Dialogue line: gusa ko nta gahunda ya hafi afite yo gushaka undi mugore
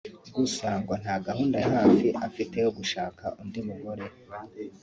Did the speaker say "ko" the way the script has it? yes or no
no